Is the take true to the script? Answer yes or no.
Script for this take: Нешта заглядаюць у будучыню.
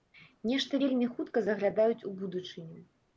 no